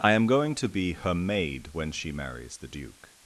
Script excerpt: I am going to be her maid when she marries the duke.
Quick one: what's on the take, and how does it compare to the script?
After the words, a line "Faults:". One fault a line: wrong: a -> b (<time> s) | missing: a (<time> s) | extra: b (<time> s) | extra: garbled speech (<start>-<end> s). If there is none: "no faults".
I am going to be her maid when she marries the duke.
Faults:
no faults